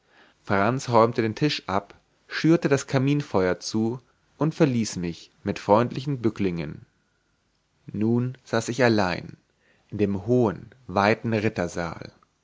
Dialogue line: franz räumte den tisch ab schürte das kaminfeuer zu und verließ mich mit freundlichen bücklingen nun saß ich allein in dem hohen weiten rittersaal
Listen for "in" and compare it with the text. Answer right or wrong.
right